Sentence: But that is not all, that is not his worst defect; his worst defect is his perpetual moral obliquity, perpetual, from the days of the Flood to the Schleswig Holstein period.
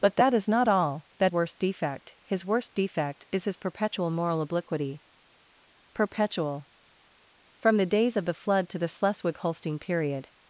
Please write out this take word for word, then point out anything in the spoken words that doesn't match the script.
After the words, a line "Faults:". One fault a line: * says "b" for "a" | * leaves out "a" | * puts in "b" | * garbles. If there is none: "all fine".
But that is not all, that worst defect; his worst defect is his perpetual moral obliquity, perpetual, from the days of the Flood to the Schleswig Holstein period.
Faults:
* leaves out "is not his"